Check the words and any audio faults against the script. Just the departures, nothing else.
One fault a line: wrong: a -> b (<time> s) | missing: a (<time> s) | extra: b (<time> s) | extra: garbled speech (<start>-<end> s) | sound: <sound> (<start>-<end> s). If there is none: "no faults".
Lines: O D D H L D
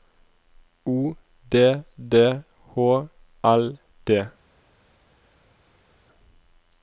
no faults